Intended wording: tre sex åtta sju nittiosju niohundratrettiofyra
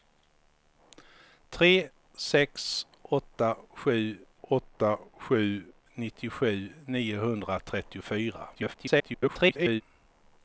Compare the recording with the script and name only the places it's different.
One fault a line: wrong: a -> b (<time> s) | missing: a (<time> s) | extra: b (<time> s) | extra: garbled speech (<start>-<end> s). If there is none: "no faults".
extra: åtta sju (4.4 s)
extra: garbled speech (8.5-9.8 s)